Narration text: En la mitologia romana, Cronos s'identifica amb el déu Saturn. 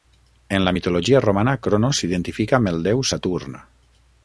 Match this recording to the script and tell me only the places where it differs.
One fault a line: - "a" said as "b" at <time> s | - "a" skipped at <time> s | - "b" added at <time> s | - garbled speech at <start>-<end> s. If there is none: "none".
none